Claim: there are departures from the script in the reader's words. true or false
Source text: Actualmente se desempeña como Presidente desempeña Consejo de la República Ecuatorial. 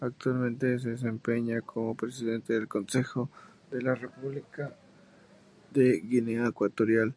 true